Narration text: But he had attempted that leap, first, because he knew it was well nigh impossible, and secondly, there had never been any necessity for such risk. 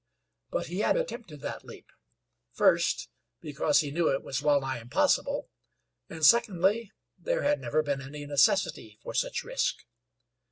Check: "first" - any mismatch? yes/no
no